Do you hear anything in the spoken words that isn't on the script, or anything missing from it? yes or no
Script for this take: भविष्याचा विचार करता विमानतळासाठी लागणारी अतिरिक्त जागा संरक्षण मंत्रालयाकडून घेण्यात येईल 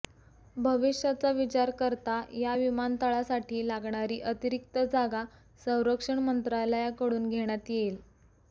yes